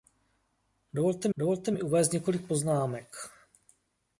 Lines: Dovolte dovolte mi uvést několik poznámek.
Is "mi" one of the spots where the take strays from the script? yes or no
no